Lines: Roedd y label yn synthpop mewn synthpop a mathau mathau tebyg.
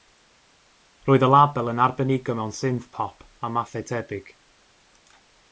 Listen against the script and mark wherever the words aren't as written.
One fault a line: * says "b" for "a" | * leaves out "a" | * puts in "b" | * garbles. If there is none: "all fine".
* says "arbenigo" for "synthpop"
* leaves out "mathau"